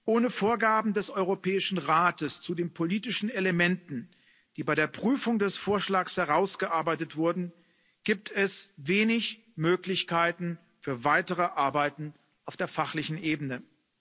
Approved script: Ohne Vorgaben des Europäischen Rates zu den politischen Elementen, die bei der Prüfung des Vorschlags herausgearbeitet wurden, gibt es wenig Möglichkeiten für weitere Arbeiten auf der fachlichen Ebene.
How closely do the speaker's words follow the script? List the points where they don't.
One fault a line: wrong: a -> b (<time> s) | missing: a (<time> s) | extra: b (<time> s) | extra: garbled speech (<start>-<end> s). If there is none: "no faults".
no faults